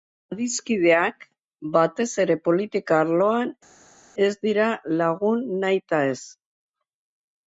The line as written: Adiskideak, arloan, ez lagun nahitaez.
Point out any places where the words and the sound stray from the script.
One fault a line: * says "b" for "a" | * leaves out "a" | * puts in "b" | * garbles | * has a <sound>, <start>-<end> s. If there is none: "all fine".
* puts in "batez ere politika"
* puts in "dira"